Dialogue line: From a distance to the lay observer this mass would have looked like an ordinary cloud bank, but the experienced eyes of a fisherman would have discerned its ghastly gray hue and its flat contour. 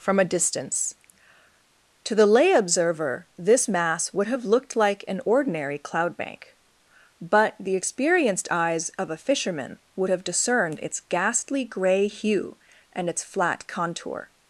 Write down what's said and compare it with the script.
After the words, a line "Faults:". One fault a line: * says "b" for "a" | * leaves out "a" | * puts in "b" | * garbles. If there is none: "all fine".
From a distance to the lay observer this mass would have looked like an ordinary cloud bank, but the experienced eyes of a fisherman would have discerned its ghastly gray hue and its flat contour.
Faults:
all fine